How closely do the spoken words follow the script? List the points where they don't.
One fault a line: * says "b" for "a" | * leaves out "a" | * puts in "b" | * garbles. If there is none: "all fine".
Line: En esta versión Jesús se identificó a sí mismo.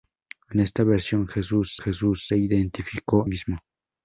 * puts in "Jesús"
* leaves out "a sí"